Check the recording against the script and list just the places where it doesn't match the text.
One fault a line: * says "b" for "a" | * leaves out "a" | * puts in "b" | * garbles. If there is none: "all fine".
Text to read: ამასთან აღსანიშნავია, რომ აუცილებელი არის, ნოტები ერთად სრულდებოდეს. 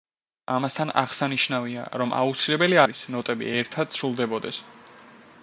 all fine